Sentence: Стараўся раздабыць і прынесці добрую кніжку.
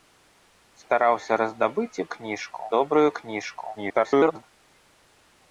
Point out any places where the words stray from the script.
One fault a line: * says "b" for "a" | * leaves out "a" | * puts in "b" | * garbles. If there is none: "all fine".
* says "кніжку" for "прынесці"
* garbles